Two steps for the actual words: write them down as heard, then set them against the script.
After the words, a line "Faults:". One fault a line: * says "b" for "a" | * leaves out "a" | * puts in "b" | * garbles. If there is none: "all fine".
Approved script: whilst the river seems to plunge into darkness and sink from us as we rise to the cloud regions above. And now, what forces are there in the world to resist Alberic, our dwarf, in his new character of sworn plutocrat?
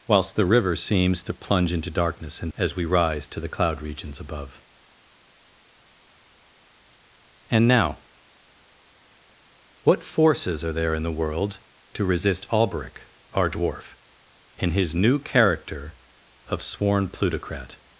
whilst the river seems to plunge into darkness and as we rise to the cloud regions above. And now, what forces are there in the world to resist Alberic, our dwarf, in his new character of sworn plutocrat?
Faults:
* leaves out "sink from us"